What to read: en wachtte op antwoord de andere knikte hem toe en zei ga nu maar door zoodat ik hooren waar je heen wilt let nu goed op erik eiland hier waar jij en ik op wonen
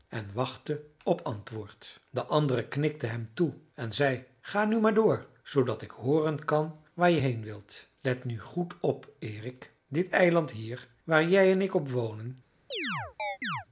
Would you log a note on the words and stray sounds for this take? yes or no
yes